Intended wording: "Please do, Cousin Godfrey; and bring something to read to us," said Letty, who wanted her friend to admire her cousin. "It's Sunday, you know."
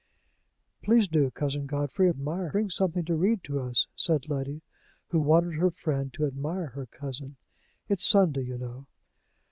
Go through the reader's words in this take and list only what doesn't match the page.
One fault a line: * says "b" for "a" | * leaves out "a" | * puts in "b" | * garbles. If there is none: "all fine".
* says "admire" for "and"